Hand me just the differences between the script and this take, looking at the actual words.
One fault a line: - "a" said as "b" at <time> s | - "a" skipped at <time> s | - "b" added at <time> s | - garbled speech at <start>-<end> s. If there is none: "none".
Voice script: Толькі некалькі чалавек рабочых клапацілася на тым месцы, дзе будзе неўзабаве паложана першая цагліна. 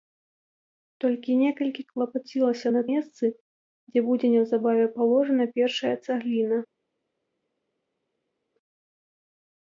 - "чалавек рабочых" skipped at 1.8 s
- "тым" skipped at 2.8 s